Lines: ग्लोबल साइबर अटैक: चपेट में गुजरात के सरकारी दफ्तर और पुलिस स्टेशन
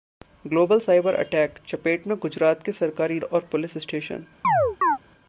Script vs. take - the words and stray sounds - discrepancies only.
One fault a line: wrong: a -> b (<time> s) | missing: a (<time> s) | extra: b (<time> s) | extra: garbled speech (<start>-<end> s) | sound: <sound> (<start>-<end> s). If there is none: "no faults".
missing: दफ्तर (3.2 s)
sound: chirp (4.4-5.0 s)